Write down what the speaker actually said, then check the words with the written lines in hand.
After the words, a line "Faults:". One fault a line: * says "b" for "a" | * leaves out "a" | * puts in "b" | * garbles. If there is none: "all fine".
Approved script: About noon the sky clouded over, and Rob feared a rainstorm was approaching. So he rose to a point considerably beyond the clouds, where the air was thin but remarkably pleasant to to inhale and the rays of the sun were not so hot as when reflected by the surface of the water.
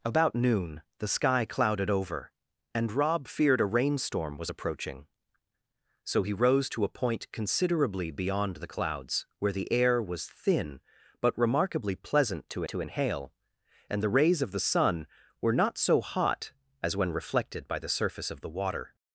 About noon the sky clouded over, and Rob feared a rainstorm was approaching. So he rose to a point considerably beyond the clouds, where the air was thin but remarkably pleasant to to inhale and the rays of the sun were not so hot as when reflected by the surface of the water.
Faults:
all fine